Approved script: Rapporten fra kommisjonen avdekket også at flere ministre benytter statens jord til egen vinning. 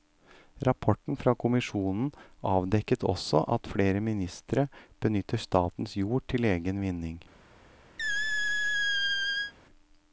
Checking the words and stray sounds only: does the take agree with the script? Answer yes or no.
no